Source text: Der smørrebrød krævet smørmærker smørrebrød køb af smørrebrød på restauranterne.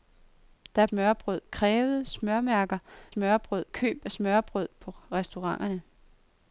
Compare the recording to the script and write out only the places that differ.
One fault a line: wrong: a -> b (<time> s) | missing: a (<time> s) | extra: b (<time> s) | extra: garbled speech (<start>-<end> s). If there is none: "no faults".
no faults